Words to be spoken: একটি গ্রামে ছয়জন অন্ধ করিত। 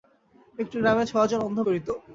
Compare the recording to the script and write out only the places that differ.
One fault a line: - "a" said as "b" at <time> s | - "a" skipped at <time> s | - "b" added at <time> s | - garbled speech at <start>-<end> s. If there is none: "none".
none